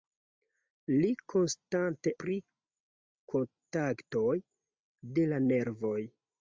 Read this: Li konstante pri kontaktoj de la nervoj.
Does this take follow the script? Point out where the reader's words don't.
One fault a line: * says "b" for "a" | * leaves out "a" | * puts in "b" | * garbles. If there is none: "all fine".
all fine